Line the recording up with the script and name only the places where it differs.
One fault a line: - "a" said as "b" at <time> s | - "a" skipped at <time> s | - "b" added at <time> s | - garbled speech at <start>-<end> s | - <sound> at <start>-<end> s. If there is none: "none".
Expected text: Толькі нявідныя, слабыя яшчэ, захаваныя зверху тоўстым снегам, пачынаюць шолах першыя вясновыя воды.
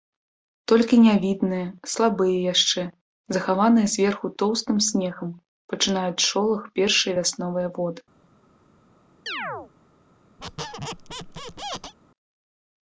- chirp at 9.3-9.7 s
- squeak at 10.4-11.9 s